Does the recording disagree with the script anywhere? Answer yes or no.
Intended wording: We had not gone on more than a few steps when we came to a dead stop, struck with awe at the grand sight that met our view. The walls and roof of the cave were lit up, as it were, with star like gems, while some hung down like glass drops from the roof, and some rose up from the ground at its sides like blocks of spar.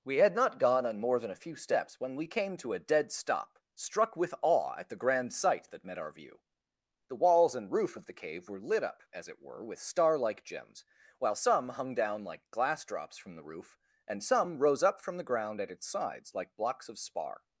no